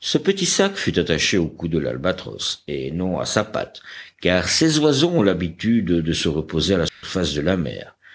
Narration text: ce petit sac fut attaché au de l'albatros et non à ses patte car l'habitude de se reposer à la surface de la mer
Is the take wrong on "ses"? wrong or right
wrong